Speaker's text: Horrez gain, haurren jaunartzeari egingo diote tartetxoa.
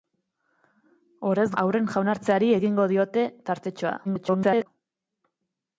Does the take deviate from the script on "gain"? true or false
true